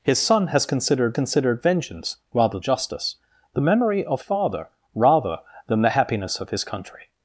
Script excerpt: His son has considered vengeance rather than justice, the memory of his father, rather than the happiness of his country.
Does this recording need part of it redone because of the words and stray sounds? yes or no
yes